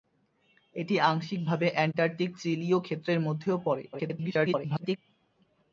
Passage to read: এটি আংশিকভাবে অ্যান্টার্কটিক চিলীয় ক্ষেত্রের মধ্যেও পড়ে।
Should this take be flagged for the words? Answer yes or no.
yes